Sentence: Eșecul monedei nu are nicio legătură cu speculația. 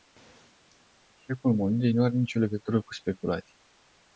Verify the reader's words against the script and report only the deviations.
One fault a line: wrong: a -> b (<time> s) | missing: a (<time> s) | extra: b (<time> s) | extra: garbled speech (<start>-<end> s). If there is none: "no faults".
no faults